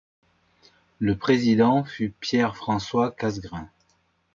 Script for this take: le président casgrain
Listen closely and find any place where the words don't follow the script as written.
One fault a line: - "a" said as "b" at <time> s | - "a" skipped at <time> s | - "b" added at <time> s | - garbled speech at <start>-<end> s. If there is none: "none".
- "fut pierre françois" added at 1.8 s